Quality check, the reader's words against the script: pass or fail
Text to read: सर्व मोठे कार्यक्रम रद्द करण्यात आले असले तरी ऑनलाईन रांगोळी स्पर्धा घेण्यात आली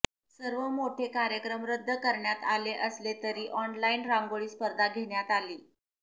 pass